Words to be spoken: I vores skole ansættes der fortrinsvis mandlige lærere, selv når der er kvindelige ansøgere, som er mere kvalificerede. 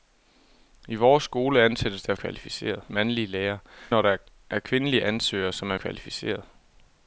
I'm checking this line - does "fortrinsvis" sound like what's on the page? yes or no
no